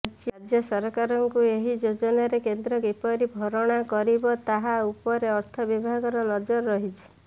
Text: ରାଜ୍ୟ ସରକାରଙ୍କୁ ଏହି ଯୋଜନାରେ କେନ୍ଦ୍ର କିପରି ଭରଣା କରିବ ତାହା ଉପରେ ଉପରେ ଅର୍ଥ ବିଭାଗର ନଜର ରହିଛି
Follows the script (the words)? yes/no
no